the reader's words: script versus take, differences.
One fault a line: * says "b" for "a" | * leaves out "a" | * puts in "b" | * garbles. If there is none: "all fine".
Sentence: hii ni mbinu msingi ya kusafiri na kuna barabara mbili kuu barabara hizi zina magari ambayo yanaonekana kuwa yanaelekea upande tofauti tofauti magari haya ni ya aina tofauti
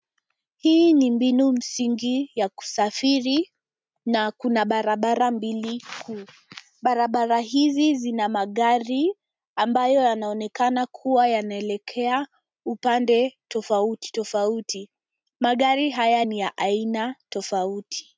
all fine